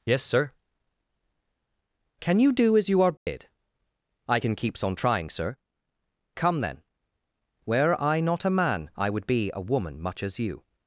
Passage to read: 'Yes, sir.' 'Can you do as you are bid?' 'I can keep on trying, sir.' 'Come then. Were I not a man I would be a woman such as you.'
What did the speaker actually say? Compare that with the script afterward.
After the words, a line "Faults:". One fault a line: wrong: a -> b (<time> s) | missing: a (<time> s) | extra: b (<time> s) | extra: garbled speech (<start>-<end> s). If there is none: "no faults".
'Yes, sir.' 'Can you do as you are bid?' 'I can keeps on trying, sir.' 'Come then. Were I not a man I would be a woman much as you.'
Faults:
wrong: keep -> keeps (4.6 s)
wrong: such -> much (10.0 s)